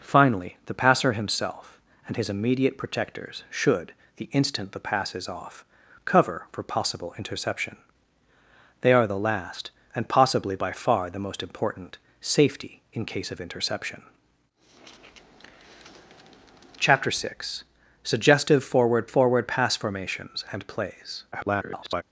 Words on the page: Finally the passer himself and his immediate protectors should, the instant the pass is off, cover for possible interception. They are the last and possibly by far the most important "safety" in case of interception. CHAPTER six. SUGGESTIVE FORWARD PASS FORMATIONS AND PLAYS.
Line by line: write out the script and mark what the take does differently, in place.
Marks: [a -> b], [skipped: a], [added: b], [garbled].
Finally the passer himself and his immediate protectors should, the instant the pass is off, cover for possible interception. They are the last and possibly by far the most important "safety" in case of interception. CHAPTER six. SUGGESTIVE FORWARD [added: FORWARD] PASS FORMATIONS AND PLAYS. [garbled]